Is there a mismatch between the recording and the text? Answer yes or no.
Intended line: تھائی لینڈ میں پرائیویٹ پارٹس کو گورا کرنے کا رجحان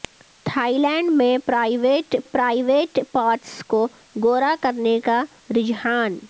yes